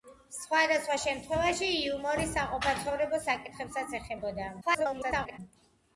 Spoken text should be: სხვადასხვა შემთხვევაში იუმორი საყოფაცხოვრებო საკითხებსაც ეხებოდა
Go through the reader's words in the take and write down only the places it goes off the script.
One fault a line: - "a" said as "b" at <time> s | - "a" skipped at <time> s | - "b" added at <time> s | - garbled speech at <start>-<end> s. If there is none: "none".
- garbled speech at 4.6-5.4 s